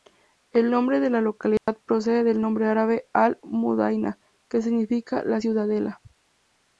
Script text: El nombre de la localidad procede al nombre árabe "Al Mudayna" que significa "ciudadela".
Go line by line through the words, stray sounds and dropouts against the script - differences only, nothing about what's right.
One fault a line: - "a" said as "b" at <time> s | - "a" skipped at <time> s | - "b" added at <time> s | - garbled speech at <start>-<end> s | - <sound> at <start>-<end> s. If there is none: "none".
- dropout at 1.6-1.7 s
- "al" said as "del" at 2.2 s
- "la" added at 5.2 s